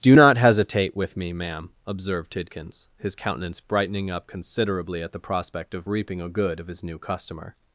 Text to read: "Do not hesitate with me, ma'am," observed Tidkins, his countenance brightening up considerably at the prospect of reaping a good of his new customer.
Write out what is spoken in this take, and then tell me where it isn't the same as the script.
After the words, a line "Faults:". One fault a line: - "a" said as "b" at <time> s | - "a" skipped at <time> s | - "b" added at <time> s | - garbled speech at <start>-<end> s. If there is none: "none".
"Do not hesitate with me, ma'am," observed Tidkins, his countenance brightening up considerably at the prospect of reaping a good of his new customer.
Faults:
none